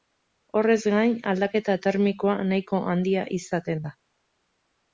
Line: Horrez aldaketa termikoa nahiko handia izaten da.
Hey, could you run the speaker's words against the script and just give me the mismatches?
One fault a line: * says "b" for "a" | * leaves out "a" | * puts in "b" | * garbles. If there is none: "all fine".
* puts in "gain"